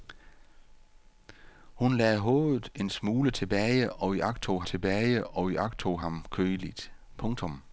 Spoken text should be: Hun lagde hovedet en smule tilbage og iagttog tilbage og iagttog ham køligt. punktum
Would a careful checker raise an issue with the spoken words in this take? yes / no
no